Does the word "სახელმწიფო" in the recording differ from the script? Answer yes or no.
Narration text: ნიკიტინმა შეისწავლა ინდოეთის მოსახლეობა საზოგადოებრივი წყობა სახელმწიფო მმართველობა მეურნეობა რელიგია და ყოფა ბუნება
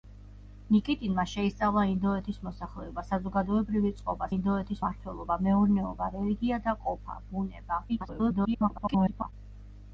yes